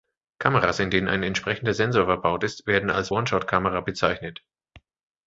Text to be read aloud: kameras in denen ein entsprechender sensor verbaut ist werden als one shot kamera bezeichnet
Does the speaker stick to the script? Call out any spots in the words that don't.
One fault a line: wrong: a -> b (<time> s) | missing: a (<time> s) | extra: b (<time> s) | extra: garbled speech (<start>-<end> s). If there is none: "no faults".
no faults